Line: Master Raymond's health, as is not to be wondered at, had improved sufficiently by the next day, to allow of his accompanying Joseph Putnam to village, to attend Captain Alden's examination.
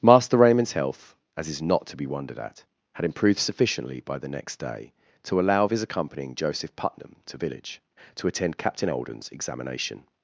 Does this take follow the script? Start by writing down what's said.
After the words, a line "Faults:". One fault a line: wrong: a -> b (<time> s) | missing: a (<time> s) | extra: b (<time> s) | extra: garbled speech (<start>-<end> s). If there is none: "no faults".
Master Raymond's health, as is not to be wondered at, had improved sufficiently by the next day, to allow of his accompanying Joseph Putnam to village, to attend Captain Alden's examination.
Faults:
no faults